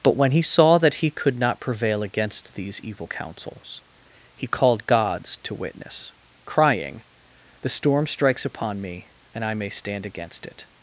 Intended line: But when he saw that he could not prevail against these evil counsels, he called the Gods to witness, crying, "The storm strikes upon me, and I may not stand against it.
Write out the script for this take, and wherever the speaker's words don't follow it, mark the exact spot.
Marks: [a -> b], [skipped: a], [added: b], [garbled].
But when he saw that he could not prevail against these evil counsels, he called [skipped: the] Gods to witness, crying, "The storm strikes upon me, and I may [skipped: not] stand against it.